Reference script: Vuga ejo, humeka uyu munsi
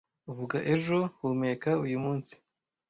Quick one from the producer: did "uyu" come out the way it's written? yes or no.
yes